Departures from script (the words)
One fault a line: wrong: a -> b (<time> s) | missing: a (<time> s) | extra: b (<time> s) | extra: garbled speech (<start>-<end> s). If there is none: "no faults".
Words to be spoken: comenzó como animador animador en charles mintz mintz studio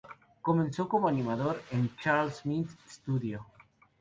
missing: animador (1.6 s)
missing: mintz (2.7 s)